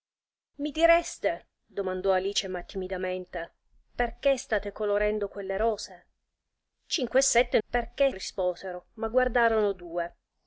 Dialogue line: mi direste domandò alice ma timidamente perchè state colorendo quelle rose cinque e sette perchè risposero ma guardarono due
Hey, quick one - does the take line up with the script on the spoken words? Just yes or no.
yes